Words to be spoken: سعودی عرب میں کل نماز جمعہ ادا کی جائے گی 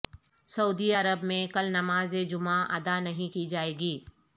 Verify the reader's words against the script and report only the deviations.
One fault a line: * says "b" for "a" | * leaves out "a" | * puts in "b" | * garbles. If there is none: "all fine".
* puts in "نہیں"